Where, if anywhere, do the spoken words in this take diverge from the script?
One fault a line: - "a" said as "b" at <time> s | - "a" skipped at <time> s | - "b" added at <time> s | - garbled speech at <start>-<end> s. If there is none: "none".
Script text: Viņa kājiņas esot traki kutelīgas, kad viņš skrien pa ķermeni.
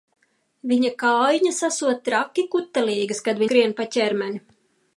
- "viņš" skipped at 3.5 s